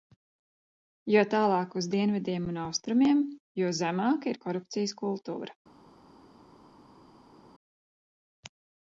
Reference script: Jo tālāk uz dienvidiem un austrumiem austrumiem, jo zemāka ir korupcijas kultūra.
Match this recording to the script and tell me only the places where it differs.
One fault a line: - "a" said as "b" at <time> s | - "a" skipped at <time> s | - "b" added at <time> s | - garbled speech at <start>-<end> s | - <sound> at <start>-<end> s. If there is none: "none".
- "austrumiem" skipped at 3.2 s